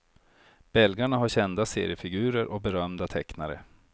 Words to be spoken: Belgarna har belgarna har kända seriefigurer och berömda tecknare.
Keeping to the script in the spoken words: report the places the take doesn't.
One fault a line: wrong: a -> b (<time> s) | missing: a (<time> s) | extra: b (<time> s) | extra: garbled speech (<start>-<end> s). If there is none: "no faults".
missing: belgarna har (1.3 s)